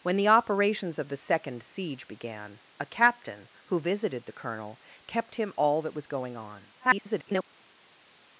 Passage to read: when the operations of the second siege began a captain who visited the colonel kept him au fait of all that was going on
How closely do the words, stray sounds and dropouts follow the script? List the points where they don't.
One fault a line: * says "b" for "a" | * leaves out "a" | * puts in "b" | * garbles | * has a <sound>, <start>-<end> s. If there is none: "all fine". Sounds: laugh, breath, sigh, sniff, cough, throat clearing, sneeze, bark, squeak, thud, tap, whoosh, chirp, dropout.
* leaves out "au fait of"
* garbles